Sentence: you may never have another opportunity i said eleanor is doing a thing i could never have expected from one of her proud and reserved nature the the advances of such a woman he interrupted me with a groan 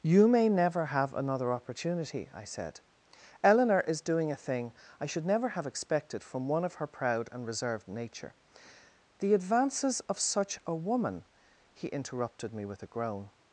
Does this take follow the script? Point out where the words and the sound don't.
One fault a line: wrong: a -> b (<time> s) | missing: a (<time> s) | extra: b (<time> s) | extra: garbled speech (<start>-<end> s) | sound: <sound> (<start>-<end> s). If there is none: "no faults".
wrong: could -> should (5.0 s)
missing: the (9.3 s)